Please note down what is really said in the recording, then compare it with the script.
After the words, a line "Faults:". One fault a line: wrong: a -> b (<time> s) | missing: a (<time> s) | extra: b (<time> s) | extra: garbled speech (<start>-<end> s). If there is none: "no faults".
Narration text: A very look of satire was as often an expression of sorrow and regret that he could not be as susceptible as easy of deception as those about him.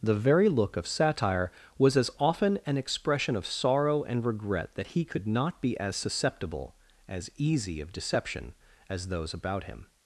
The very look of satire was as often an expression of sorrow and regret that he could not be as susceptible as easy of deception as those about him.
Faults:
wrong: A -> The (0.0 s)